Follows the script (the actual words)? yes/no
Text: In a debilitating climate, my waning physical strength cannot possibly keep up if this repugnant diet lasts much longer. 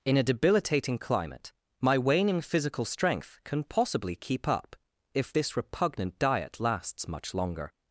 no